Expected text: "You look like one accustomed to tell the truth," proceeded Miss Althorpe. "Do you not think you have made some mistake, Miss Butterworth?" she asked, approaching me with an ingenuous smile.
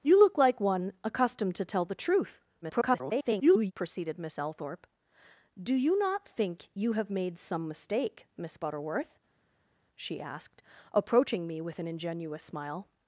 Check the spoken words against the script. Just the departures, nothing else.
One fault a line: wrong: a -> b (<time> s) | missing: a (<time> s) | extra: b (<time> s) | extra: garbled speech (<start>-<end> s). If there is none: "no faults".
extra: garbled speech (2.6-3.7 s)